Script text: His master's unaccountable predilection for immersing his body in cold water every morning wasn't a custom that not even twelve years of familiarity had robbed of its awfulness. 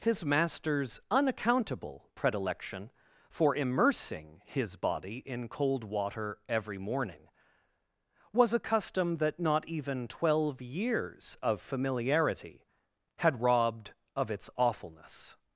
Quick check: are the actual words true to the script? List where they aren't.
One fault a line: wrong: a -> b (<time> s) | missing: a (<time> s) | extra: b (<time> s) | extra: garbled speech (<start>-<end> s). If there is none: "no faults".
wrong: wasn't -> was (8.3 s)